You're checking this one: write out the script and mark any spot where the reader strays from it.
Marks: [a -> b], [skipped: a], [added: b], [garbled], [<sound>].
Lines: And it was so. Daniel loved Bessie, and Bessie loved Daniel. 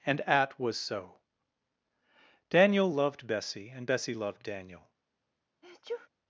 And [it -> at] was so. Daniel loved Bessie, and Bessie loved Daniel. [sneeze]